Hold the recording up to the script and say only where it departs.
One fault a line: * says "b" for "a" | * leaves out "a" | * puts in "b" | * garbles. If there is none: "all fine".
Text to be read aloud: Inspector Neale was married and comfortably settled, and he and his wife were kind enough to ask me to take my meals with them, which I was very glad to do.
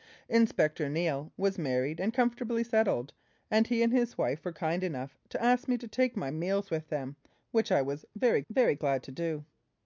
* puts in "very"